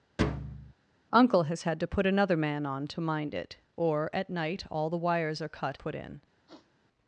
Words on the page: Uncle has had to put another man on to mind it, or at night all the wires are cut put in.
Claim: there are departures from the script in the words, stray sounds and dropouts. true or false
true